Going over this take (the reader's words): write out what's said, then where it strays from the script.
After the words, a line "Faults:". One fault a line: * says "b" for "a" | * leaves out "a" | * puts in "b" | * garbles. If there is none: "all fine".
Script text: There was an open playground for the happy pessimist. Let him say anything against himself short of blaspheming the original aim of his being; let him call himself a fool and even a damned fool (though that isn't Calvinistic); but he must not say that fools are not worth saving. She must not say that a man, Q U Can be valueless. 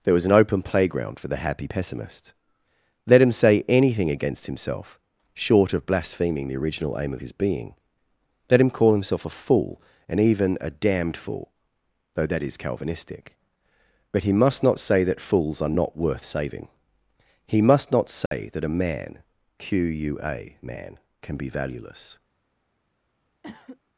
There was an open playground for the happy pessimist. Let him say anything against himself short of blaspheming the original aim of his being; let him call himself a fool and even a damned fool (though that is Calvinistic); but he must not say that fools are not worth saving. He must not say that a man, Q U A man, can be valueless.
Faults:
* says "is" for "isn't"
* says "He" for "She"
* puts in "A man"